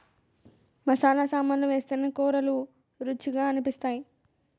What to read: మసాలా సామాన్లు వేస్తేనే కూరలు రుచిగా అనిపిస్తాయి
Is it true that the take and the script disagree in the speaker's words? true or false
false